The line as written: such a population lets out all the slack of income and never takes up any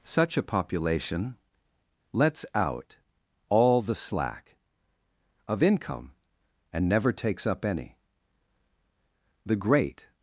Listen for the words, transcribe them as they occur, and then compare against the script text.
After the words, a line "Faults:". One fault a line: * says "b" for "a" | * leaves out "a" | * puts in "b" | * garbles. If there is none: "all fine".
such a population lets out all the slack of income and never takes up any the great
Faults:
* puts in "the great"